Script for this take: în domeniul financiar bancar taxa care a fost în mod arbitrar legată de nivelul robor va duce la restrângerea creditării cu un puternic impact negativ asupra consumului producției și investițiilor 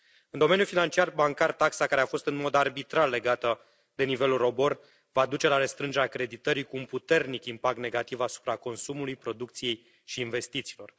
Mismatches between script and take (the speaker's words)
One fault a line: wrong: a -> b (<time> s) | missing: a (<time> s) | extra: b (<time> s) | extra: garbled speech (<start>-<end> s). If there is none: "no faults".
no faults